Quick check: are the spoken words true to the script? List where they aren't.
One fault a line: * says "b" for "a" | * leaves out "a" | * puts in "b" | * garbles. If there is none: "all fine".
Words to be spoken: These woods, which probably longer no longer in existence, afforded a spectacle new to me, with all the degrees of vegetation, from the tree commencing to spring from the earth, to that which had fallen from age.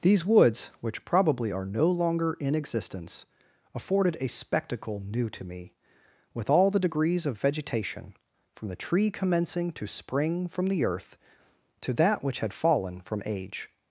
* says "are" for "longer"